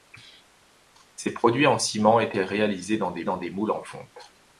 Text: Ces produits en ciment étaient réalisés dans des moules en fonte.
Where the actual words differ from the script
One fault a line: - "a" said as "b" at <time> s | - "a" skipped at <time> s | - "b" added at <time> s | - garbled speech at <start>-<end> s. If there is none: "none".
- "dans des" added at 3.2 s